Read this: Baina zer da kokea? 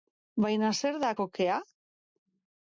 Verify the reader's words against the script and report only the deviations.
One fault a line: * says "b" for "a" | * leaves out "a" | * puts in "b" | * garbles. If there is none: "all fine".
all fine